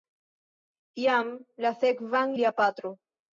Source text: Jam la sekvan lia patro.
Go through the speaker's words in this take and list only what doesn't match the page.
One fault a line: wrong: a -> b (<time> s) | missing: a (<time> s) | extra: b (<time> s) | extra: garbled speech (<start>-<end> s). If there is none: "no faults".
no faults